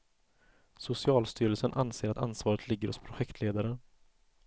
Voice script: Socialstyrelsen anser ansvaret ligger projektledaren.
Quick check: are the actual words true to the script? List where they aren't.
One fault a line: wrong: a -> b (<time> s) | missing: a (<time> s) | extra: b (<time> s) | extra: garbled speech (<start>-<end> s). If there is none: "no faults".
extra: att (2.1 s)
extra: hos (2.9 s)